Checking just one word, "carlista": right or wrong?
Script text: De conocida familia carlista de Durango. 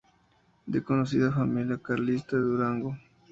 right